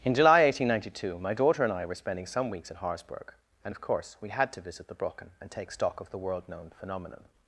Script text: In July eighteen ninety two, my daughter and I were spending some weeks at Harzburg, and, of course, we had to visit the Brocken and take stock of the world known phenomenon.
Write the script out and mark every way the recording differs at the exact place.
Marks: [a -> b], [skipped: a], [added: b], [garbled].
In July eighteen ninety two, my daughter and I were spending some weeks at Harzburg, and, of course, we had to visit the Brocken and take stock of the world known phenomenon.